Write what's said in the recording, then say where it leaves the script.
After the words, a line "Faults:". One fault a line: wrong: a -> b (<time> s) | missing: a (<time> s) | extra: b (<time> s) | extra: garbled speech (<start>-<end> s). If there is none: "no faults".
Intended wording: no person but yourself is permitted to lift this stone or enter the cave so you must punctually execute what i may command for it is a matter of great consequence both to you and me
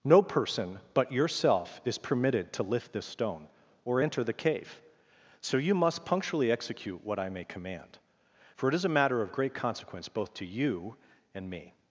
no person but yourself is permitted to lift this stone or enter the cave so you must punctually execute what i may command for it is a matter of great consequence both to you and me
Faults:
no faults